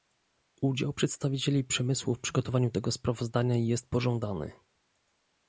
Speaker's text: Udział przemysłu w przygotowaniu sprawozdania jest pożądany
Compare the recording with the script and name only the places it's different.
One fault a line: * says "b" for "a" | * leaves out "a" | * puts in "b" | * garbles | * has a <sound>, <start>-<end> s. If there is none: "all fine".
* puts in "przedstawicieli"
* puts in "tego"